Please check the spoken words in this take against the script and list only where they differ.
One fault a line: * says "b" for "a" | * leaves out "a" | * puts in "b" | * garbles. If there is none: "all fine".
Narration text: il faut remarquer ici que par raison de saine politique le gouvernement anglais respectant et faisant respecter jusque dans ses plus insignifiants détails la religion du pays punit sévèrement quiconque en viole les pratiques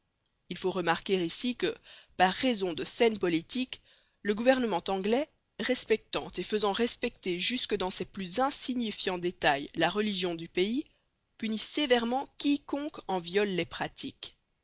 all fine